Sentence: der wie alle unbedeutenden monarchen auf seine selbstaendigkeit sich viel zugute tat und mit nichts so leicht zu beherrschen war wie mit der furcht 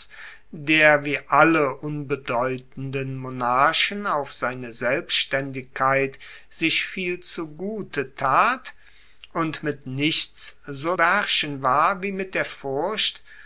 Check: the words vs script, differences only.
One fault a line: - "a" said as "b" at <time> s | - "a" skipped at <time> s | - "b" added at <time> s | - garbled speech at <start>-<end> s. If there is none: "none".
- "leicht zu" skipped at 10.9 s